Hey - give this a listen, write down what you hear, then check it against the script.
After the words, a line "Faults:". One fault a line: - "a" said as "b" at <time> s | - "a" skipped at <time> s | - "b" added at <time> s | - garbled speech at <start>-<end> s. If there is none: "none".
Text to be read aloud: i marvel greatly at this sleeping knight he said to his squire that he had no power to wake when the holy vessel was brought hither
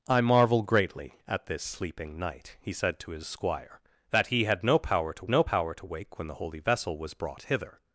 i marvel greatly at this sleeping knight he said to his squire that he had no power to no power to wake when the holy vessel was brought hither
Faults:
- "no power to" added at 5.3 s